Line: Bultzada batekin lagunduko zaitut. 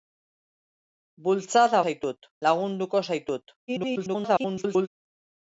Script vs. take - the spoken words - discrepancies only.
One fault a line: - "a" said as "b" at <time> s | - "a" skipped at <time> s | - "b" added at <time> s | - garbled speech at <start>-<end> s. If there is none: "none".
- "batekin" said as "zaitut" at 1.9 s
- garbled speech at 3.7-4.9 s